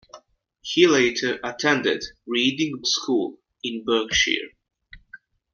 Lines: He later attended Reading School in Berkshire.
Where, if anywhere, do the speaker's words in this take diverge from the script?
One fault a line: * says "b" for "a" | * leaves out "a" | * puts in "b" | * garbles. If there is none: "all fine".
all fine